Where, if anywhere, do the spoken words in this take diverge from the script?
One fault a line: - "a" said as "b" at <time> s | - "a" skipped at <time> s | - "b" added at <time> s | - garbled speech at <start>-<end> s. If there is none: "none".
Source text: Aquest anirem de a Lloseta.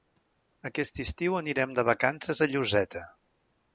- "estiu" added at 1.0 s
- "vacances" added at 1.9 s